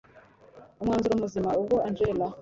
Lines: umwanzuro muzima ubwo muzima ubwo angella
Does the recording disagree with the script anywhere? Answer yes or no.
yes